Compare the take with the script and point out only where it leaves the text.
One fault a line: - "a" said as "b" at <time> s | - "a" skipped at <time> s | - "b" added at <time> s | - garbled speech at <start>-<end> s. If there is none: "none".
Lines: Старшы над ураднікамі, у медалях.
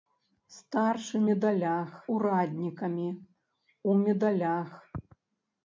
- "над" said as "медалях" at 1.3 s